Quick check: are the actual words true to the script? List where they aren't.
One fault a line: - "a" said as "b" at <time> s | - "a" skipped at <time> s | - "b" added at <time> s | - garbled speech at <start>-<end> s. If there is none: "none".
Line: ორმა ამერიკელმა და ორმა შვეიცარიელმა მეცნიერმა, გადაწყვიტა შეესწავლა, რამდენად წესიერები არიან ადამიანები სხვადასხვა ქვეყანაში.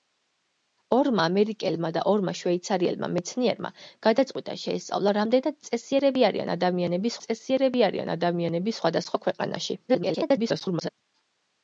- "წესიერები არიან ადამიანები" added at 7.3 s
- garbled speech at 9.9-10.9 s